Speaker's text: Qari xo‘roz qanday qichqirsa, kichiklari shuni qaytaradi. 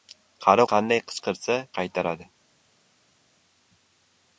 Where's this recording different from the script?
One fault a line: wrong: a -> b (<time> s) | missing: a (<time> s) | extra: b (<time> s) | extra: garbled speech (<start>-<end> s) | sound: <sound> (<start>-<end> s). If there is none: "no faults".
missing: xo‘roz (0.6 s)
missing: kichiklari shuni (1.6 s)